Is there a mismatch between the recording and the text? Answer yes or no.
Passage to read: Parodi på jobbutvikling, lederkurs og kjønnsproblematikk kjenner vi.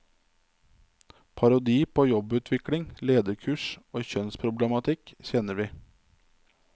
no